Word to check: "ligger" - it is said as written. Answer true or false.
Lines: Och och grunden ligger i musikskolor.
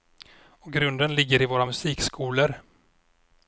true